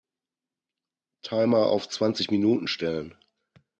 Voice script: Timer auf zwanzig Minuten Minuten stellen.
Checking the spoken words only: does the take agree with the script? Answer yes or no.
no